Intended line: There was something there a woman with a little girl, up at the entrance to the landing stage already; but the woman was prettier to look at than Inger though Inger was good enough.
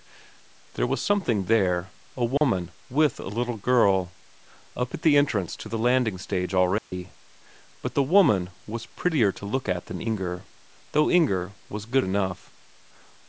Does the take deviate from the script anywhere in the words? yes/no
no